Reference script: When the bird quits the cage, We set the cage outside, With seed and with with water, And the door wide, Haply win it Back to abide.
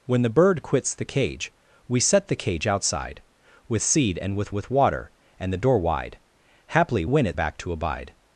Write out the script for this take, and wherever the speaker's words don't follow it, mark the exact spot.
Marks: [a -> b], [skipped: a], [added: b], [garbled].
When the bird quits the cage, We set the cage outside, With seed and with with water, And the door wide, Haply win it Back to abide.